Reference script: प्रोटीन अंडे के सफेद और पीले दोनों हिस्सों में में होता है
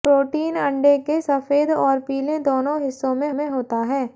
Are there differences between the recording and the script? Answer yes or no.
no